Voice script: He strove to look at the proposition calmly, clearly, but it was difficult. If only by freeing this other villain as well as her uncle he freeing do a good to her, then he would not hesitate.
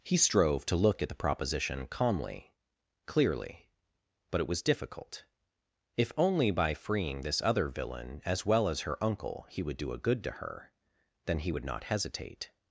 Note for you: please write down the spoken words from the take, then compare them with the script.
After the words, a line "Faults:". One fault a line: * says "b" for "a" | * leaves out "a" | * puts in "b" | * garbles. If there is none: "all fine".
He strove to look at the proposition calmly, clearly, but it was difficult. If only by freeing this other villain as well as her uncle he would do a good to her, then he would not hesitate.
Faults:
* says "would" for "freeing"